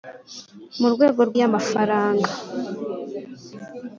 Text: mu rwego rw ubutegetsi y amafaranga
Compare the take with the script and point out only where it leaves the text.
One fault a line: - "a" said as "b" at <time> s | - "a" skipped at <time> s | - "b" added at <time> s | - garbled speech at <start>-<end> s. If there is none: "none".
- "ubutegetsi" skipped at 1.4 s